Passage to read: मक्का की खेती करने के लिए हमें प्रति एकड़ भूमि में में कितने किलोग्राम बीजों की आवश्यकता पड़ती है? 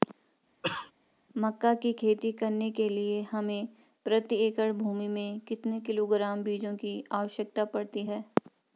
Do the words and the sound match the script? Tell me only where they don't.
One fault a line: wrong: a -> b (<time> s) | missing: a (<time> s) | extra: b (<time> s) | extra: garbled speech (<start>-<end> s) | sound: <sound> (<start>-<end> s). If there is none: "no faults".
sound: cough (0.6-0.9 s)
missing: में (5.4 s)